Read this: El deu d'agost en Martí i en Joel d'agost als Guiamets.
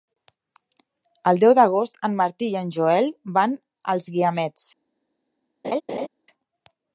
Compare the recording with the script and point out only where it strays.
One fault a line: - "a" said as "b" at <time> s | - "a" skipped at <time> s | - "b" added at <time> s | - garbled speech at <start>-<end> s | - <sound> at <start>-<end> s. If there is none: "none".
- "d'agost" said as "van" at 3.4 s
- laugh at 5.6-6.1 s